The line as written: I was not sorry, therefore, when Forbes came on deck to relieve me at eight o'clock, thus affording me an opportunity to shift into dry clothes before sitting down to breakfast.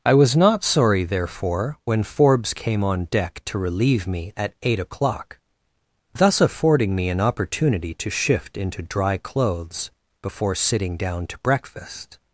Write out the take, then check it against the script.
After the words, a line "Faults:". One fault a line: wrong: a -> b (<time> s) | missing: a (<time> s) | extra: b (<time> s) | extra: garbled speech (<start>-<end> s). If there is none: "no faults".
I was not sorry, therefore, when Forbes came on deck to relieve me at eight o'clock, thus affording me an opportunity to shift into dry clothes before sitting down to breakfast.
Faults:
no faults